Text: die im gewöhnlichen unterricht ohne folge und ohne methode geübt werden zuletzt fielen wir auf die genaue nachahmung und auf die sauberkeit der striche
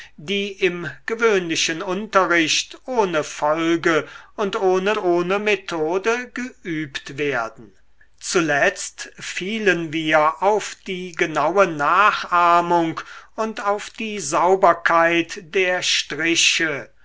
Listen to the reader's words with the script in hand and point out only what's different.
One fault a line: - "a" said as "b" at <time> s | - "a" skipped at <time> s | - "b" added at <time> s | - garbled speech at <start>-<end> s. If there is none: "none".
- "ohne" added at 5.0 s